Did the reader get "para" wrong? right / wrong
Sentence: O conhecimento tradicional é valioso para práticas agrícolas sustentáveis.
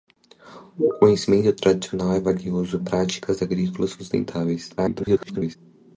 wrong